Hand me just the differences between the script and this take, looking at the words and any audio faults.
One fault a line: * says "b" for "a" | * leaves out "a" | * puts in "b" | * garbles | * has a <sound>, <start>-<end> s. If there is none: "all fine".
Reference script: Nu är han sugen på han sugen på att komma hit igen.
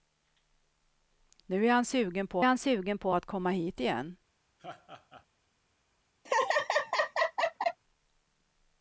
* has a laugh, 4.6-5.3 s
* has a laugh, 6.2-7.8 s